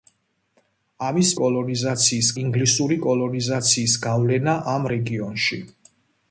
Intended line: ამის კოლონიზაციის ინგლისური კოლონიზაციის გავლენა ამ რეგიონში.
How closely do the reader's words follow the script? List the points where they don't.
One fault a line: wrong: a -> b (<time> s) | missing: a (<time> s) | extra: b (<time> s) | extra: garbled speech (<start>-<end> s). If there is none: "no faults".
no faults